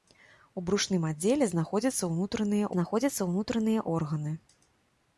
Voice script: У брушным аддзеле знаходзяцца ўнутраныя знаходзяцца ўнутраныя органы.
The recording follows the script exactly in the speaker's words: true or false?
true